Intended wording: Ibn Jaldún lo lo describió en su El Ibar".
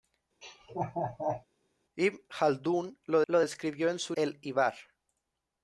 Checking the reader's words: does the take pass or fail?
pass